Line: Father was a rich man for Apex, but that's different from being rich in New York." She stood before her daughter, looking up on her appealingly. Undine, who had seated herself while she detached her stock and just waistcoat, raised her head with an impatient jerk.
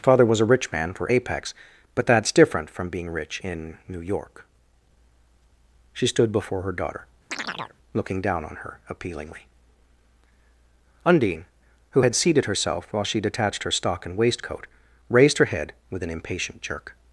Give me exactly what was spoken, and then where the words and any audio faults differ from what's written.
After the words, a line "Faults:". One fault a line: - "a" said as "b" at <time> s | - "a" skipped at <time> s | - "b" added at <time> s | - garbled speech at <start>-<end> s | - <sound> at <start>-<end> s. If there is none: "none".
Father was a rich man for Apex, but that's different from being rich in New York." She stood before her daughter, looking down on her appealingly. Undine, who had seated herself while she detached her stock and waistcoat, raised her head with an impatient jerk.
Faults:
- chirp at 7.3-7.8 s
- "up" said as "down" at 8.2 s
- "just" skipped at 14.2 s